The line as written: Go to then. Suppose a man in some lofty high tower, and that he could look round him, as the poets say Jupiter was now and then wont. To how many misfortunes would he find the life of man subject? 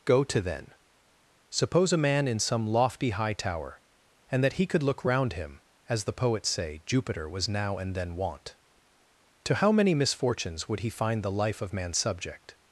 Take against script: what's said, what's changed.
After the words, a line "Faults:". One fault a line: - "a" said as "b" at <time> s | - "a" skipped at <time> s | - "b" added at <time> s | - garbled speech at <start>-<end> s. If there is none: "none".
Go to then. Suppose a man in some lofty high tower, and that he could look round him, as the poets say Jupiter was now and then wont. To how many misfortunes would he find the life of man subject?
Faults:
none